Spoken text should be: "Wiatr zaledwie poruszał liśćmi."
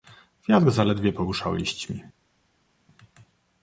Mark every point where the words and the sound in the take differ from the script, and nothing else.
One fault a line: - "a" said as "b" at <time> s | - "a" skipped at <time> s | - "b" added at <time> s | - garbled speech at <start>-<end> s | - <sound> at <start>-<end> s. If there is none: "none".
none